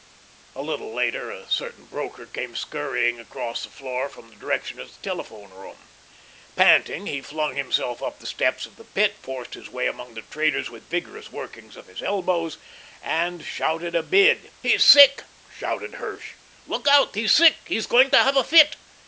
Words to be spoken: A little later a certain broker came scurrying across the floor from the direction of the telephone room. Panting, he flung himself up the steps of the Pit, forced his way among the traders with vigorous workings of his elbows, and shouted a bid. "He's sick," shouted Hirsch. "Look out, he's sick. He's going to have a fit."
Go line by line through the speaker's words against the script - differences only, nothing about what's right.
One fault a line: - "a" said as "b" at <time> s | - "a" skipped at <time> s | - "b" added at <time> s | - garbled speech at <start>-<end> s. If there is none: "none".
none